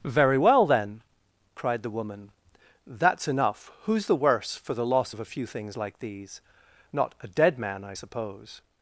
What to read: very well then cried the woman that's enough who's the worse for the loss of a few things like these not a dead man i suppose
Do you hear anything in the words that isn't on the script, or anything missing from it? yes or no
no